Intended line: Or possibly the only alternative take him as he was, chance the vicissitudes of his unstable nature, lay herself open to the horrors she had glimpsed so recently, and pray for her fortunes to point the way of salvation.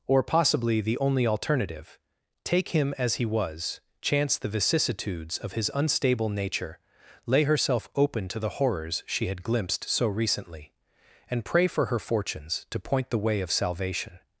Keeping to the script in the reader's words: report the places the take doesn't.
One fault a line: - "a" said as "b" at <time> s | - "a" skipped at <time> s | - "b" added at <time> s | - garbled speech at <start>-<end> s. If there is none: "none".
none